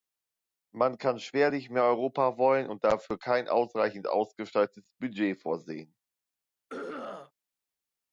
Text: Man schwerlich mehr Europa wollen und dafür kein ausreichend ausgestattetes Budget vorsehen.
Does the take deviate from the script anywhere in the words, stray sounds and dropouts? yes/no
yes